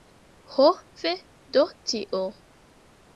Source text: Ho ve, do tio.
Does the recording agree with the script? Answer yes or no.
yes